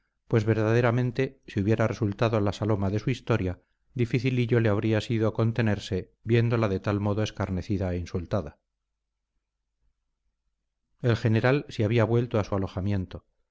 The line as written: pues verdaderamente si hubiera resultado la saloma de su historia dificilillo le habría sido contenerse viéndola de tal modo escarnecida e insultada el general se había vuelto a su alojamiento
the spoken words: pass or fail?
pass